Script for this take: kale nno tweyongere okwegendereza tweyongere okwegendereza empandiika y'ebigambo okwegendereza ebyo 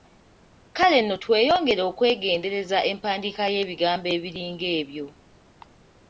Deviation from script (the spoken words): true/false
true